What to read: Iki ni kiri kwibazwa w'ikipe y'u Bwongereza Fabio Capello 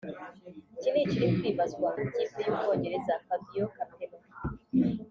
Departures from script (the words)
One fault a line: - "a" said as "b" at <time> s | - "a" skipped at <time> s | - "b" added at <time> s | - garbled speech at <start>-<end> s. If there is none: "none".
none